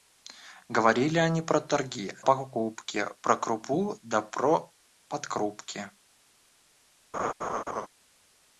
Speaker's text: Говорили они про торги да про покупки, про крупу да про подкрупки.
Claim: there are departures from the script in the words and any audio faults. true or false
true